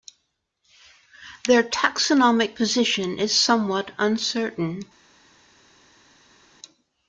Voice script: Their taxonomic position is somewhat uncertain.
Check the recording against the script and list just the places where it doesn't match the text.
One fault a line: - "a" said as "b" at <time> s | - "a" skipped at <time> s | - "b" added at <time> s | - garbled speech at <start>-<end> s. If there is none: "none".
none